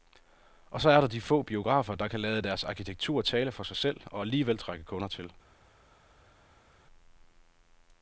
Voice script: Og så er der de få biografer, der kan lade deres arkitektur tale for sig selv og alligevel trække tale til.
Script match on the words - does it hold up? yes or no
no